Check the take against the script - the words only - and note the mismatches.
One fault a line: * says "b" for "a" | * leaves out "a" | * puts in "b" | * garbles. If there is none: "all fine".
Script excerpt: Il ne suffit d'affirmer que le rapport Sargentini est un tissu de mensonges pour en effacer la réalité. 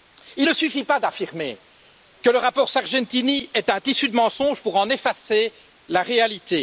* puts in "pas"